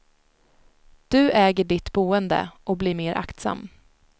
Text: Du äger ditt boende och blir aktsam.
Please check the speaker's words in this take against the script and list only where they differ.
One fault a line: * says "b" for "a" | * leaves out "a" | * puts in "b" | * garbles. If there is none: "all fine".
* puts in "mer"